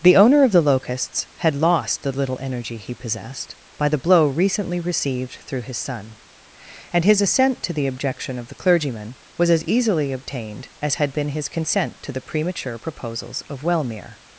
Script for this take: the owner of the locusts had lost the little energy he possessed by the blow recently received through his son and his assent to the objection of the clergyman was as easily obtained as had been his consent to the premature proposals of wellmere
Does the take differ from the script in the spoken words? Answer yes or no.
no